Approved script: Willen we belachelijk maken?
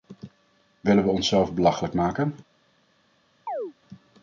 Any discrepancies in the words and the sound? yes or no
yes